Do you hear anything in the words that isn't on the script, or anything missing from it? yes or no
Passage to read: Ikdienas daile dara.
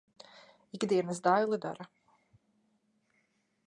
no